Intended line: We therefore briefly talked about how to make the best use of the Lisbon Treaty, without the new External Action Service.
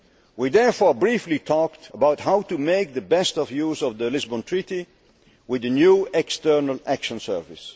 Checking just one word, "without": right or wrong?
wrong